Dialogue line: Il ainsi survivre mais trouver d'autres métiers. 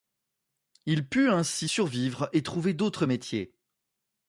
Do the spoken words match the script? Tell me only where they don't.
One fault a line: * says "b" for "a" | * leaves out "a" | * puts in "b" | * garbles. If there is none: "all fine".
* puts in "put"
* says "et" for "mais"